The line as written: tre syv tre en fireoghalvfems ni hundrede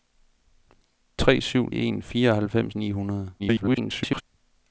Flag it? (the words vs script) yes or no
yes